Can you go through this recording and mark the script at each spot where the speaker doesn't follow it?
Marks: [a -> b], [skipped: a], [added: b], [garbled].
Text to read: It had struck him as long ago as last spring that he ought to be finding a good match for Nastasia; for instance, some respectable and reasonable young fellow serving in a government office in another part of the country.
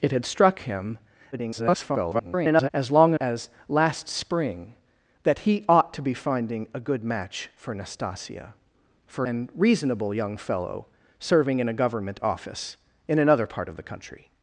It had struck him [garbled] as long [skipped: ago] as last spring that he ought to be finding a good match for Nastasia; for [skipped: instance, some respectable] and reasonable young fellow serving in a government office in another part of the country.